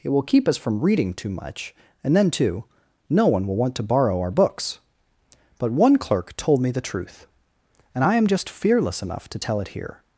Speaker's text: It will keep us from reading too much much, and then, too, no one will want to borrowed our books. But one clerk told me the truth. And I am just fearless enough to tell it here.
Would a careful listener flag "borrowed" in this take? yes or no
yes